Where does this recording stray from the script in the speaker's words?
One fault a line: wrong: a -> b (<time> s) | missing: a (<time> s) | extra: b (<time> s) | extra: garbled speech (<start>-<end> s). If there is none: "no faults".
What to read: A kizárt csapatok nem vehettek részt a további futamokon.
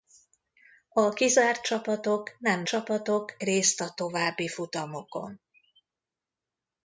wrong: vehettek -> csapatok (2.6 s)